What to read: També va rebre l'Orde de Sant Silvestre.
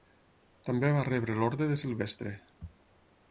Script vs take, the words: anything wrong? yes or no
yes